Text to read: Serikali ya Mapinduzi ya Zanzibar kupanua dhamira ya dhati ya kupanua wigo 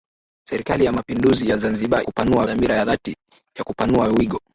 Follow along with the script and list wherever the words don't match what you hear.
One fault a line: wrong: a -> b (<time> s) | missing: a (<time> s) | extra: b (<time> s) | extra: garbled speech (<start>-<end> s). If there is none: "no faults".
no faults